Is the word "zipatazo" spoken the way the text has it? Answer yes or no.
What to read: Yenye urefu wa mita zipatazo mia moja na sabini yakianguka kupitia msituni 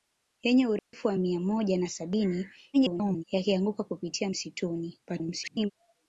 no